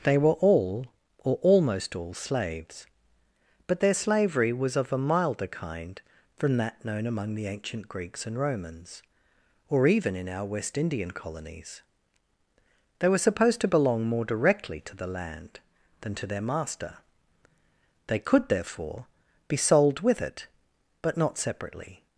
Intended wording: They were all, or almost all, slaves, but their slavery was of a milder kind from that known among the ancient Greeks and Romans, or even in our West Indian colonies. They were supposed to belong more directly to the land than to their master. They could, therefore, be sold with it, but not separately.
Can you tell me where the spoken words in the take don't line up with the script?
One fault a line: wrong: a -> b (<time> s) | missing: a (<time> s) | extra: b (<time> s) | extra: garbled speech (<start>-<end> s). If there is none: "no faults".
no faults